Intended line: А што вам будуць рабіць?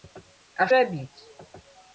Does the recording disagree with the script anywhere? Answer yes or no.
yes